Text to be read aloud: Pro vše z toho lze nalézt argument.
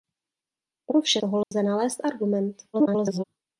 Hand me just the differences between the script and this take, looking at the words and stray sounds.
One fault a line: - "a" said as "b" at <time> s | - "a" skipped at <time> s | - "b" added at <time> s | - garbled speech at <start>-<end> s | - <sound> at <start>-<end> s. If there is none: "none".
- "z" skipped at 1.2 s
- dropout at 1.4-1.5 s
- garbled speech at 2.7-3.2 s